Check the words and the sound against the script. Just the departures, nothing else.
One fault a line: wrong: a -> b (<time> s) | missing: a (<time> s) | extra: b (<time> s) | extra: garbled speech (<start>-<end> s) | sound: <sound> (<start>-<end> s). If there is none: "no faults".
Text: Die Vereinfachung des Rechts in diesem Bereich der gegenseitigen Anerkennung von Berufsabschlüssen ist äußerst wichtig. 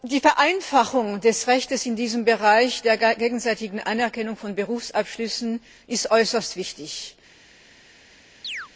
sound: chirp (8.4-8.7 s)